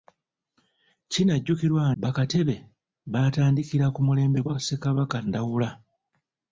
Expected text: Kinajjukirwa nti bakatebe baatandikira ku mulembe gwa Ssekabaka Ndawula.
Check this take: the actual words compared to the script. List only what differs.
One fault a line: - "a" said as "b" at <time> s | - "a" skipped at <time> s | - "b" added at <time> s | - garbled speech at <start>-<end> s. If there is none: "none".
- "nti" skipped at 1.8 s